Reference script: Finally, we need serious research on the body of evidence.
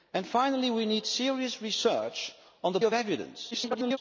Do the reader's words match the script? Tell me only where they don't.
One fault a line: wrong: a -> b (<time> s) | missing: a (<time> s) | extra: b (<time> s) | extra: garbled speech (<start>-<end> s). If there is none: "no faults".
missing: body (2.8 s)
extra: garbled speech (3.5-4.0 s)